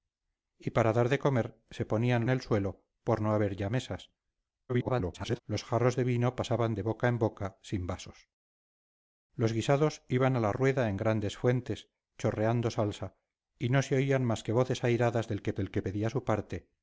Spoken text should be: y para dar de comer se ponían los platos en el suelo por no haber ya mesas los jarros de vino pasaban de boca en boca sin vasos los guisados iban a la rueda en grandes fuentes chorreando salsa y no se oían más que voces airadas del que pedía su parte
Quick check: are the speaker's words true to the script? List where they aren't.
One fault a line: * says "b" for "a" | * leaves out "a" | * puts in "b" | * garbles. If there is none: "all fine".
* leaves out "los platos en"
* garbles
* puts in "del que"